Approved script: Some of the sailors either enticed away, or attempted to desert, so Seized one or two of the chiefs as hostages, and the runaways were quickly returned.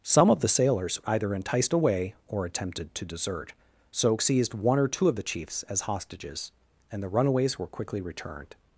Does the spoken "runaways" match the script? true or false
true